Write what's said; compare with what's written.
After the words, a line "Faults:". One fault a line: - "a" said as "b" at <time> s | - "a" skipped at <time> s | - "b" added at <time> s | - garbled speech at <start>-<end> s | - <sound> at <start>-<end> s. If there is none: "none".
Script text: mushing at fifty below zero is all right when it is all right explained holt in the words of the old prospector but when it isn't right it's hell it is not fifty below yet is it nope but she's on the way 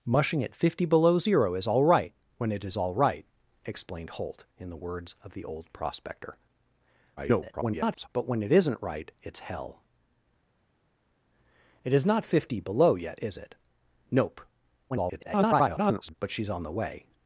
mushing at fifty below zero is all right when it is all right explained holt in the words of the old prospector [garbled] but when it isn't right it's hell it is not fifty below yet is it nope [garbled] but she's on the way
Faults:
- garbled speech at 7.2-8.1 s
- garbled speech at 14.9-16.1 s